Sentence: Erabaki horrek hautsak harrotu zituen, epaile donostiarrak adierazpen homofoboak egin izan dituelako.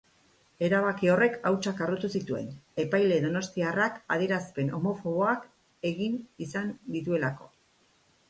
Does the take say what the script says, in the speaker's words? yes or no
yes